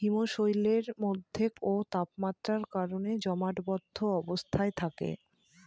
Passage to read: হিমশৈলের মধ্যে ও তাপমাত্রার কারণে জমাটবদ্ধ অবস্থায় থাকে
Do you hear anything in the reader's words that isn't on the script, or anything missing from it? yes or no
no